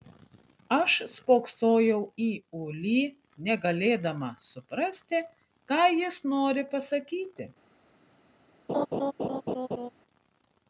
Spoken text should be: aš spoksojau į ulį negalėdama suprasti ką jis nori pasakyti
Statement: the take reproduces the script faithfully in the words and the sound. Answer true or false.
false